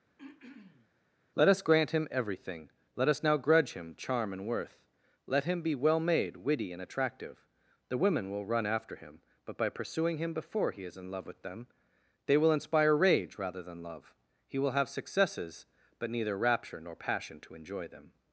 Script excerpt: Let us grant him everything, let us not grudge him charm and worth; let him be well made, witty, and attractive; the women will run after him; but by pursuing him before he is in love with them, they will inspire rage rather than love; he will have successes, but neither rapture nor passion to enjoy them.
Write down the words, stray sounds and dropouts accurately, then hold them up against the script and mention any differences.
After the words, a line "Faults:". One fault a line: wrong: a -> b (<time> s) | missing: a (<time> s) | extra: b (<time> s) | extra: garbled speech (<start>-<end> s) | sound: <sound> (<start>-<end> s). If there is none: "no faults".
Let us grant him everything, let us now grudge him charm and worth; let him be well made, witty, and attractive; the women will run after him; but by pursuing him before he is in love with them, they will inspire rage rather than love; he will have successes, but neither rapture nor passion to enjoy them.
Faults:
sound: throat clearing (0.2-0.9 s)
wrong: not -> now (3.2 s)